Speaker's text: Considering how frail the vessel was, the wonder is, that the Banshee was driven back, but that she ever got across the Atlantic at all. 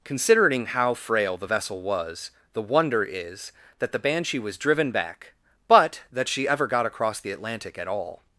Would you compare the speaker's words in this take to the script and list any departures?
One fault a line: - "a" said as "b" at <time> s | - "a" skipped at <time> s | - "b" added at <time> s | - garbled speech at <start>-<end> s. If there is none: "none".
none